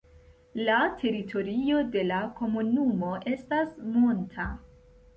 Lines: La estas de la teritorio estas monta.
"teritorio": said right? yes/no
no